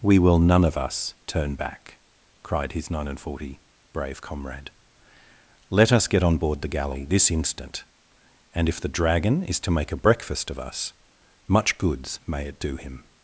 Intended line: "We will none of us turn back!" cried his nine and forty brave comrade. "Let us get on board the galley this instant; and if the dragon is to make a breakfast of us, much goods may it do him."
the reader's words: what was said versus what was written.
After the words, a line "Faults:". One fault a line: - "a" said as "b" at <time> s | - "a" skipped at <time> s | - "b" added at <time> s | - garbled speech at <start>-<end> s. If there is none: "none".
"We will none of us turn back!" cried his nine and forty brave comrade. "Let us get on board the galley this instant; and if the dragon is to make a breakfast of us, much goods may it do him."
Faults:
none